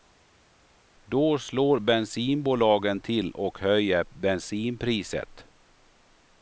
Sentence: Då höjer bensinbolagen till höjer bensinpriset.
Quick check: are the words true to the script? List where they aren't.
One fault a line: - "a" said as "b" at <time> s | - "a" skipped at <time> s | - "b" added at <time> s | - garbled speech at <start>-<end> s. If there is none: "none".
- "höjer" said as "slår" at 1.4 s
- "och" added at 3.3 s